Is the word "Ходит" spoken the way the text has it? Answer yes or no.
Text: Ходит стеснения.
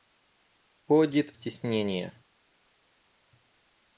yes